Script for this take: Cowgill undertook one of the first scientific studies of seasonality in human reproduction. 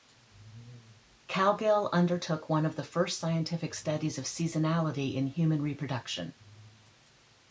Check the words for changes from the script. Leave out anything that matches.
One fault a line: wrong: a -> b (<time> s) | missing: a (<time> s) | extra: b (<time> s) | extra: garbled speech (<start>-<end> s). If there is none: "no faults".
no faults